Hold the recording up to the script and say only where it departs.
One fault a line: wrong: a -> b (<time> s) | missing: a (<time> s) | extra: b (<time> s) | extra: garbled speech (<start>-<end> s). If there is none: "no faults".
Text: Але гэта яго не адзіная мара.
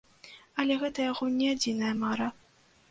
no faults